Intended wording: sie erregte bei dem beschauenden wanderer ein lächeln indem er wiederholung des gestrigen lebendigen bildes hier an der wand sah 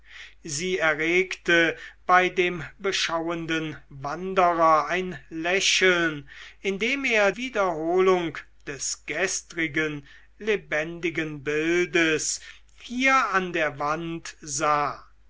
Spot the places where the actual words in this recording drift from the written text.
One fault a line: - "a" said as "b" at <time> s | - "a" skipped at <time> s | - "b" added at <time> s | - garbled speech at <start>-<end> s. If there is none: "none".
none